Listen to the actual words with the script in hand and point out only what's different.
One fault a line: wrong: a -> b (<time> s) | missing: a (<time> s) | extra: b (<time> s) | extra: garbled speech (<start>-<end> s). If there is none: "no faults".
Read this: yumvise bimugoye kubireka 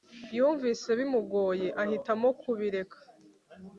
extra: ahitamo (1.8 s)